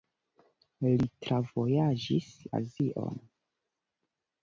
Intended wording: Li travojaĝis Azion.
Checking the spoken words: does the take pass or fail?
pass